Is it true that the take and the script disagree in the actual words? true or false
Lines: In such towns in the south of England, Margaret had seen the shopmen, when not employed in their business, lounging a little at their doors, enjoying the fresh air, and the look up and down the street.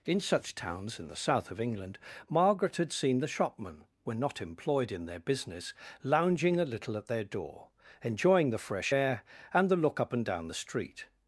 true